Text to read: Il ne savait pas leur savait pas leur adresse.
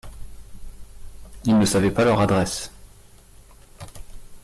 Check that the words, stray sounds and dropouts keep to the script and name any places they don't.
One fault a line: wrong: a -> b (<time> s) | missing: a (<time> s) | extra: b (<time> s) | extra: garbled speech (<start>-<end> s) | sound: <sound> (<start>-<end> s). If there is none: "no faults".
missing: savait pas leur (2.2 s)